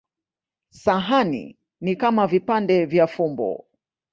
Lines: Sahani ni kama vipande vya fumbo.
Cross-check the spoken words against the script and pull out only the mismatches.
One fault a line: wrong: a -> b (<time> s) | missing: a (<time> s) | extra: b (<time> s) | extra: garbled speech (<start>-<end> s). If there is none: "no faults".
no faults